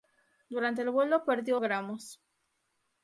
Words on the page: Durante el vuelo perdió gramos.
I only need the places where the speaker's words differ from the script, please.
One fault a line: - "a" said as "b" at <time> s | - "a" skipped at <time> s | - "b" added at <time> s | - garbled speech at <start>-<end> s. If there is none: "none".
none